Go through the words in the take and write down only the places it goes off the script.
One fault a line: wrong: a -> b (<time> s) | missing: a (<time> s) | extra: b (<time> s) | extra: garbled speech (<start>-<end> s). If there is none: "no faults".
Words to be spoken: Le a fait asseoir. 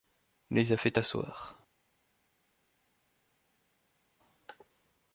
wrong: Le -> Les (0.5 s)